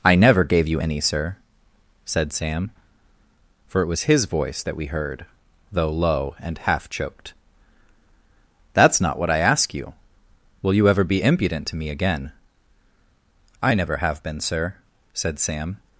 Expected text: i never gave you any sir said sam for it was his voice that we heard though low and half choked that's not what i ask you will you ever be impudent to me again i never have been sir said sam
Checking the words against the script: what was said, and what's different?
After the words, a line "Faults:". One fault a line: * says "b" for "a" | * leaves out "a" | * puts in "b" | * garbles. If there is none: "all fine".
i never gave you any sir said sam for it was his voice that we heard though low and half choked that's not what i ask you will you ever be impudent to me again i never have been sir said sam
Faults:
all fine